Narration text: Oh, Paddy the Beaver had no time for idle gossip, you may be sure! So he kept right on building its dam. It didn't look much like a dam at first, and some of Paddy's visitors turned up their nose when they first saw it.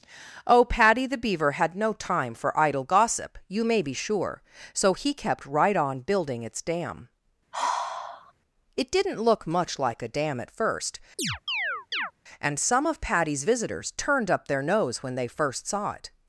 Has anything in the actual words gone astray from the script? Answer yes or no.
no